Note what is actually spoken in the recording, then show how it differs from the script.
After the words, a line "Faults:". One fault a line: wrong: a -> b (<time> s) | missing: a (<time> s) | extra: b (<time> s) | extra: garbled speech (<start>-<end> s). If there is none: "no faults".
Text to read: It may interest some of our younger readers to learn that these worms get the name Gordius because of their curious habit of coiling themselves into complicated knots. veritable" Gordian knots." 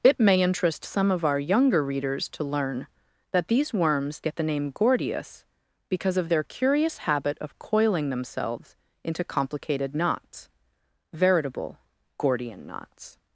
It may interest some of our younger readers to learn that these worms get the name Gordius because of their curious habit of coiling themselves into complicated knots. veritable" Gordian knots."
Faults:
no faults